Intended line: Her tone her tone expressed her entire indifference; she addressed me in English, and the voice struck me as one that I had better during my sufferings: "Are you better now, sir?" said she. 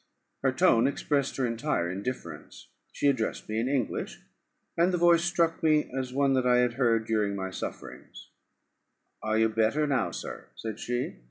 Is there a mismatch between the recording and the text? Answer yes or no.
yes